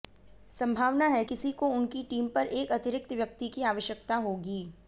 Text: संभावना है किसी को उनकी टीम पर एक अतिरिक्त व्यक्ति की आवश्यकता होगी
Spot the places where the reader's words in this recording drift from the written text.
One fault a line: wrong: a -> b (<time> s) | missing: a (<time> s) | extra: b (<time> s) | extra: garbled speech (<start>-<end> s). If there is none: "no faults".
no faults